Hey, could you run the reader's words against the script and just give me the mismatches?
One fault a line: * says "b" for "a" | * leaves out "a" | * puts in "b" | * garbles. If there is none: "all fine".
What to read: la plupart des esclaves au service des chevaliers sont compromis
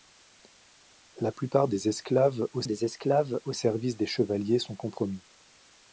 * puts in "des esclaves au"